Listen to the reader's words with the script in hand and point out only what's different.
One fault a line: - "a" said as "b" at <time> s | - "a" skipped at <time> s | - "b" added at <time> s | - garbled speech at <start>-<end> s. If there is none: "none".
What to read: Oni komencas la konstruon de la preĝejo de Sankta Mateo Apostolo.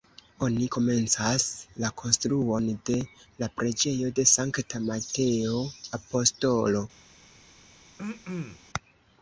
none